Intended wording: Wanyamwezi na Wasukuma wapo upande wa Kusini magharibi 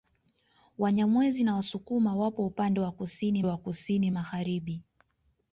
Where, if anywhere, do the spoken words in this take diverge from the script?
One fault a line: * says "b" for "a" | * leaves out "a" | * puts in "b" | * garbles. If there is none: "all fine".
* puts in "wa Kusini"